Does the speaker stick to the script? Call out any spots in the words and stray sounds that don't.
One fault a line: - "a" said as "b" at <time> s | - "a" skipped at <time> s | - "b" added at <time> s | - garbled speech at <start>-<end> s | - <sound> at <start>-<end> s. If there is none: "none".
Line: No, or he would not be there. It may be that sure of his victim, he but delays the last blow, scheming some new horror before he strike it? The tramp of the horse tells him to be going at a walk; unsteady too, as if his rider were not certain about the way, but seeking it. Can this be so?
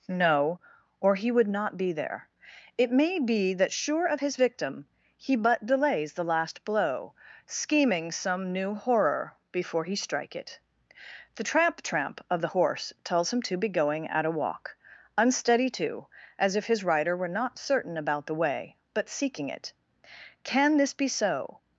- "tramp" added at 11.8 s